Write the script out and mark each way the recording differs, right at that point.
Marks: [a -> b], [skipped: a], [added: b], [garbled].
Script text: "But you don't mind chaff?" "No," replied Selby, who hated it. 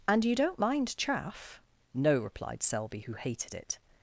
["But -> And] you don't mind chaff?" "No," replied Selby, who hated it.